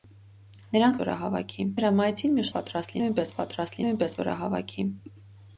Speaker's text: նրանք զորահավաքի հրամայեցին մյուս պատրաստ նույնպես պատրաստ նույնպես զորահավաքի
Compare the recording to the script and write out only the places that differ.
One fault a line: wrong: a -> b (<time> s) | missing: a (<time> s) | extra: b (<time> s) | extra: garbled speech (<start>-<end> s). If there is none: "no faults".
no faults